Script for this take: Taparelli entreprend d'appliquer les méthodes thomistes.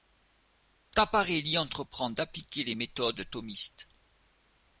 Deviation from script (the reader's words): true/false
false